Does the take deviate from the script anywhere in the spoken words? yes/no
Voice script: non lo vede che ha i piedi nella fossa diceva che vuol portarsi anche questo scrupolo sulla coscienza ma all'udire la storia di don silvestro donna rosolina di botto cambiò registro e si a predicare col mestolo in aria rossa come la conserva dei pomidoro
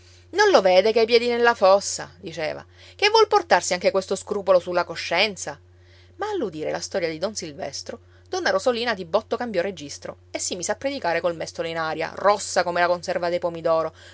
yes